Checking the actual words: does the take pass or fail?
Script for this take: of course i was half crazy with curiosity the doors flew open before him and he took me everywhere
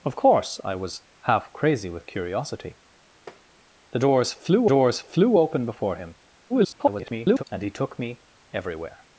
fail